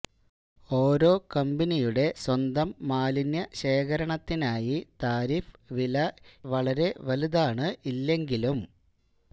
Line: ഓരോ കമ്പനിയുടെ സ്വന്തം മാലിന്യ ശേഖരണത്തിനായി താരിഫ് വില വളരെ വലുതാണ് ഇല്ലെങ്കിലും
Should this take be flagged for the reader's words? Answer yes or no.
no